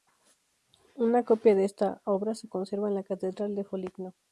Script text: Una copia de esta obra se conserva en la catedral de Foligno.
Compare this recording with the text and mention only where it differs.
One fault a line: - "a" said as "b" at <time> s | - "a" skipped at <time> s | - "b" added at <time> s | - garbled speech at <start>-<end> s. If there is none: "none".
none